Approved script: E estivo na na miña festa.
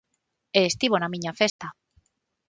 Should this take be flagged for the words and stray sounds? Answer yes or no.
yes